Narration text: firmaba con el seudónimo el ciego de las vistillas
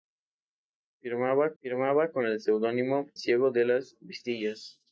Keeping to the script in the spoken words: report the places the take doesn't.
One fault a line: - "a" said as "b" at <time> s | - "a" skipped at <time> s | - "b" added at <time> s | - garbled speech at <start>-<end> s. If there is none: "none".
- "firmaba" added at 1.6 s
- "el" skipped at 3.1 s